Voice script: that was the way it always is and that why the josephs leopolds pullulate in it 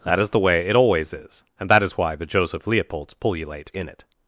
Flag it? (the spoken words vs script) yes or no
yes